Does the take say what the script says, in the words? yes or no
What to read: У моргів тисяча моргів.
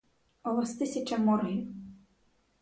no